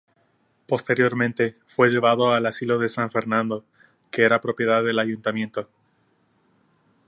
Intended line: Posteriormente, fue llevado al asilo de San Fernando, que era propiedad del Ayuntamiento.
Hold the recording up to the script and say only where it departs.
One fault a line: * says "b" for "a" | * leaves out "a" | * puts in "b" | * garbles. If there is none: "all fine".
all fine